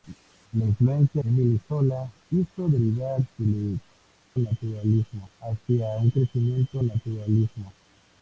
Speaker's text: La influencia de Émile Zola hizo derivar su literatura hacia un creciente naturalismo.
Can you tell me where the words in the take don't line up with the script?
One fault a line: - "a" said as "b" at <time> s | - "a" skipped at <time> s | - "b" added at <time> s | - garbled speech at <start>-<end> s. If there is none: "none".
- "de" skipped at 1.2 s
- "literatura" said as "naturalismo" at 4.4 s